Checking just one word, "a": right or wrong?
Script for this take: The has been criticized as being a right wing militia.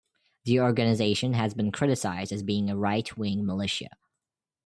right